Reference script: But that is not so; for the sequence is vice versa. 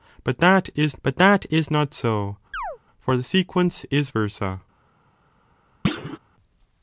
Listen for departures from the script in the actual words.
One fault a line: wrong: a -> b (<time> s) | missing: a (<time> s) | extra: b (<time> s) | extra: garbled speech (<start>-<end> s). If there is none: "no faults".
extra: but that is (1.0 s)
missing: vice (4.1 s)